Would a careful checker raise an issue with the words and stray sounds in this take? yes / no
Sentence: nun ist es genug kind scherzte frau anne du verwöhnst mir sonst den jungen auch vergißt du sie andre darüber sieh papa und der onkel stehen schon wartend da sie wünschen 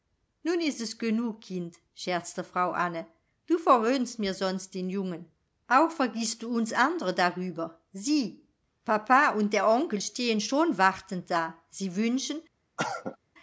yes